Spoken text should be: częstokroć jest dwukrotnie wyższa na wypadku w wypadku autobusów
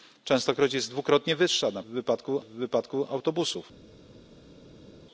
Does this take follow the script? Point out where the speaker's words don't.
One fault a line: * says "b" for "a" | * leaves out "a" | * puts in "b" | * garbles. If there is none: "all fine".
all fine